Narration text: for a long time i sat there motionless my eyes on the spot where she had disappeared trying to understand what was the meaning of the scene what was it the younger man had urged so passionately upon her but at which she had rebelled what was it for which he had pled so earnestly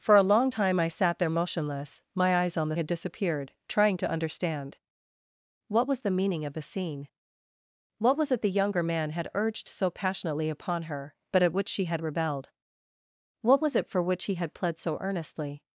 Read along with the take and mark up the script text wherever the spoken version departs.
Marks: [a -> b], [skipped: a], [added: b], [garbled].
for a long time i sat there motionless my eyes on the [skipped: spot where she] had disappeared trying to understand what was the meaning of the scene what was it the younger man had urged so passionately upon her but at which she had rebelled what was it for which he had pled so earnestly